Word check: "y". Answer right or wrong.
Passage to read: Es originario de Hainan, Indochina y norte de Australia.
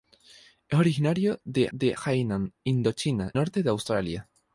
wrong